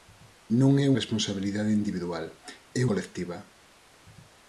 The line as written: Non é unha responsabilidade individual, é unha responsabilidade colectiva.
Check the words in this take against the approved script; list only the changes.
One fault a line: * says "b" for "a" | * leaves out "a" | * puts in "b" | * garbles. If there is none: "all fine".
* leaves out "unha"
* leaves out "unha responsabilidade"